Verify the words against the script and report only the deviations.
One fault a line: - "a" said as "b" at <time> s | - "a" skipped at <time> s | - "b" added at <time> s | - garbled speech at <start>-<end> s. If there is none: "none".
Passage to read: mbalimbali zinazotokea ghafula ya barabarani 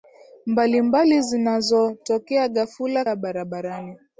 none